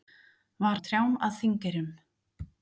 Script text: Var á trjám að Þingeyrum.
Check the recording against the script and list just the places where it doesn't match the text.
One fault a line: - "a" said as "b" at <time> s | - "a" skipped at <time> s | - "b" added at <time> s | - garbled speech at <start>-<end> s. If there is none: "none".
none